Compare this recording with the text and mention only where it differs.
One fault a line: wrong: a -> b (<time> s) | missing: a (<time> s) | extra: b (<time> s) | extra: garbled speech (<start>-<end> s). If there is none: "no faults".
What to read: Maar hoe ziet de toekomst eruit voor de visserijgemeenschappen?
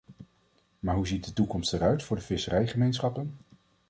no faults